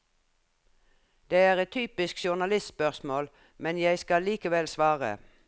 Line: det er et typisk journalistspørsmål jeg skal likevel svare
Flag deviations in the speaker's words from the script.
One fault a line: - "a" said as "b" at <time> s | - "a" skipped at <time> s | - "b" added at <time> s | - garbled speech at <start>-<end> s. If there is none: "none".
- "men" added at 3.6 s